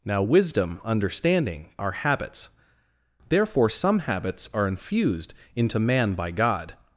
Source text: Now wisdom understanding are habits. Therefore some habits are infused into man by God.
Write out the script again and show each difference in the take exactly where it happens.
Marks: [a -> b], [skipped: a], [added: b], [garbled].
Now wisdom understanding are habits. Therefore some habits are infused into man by God.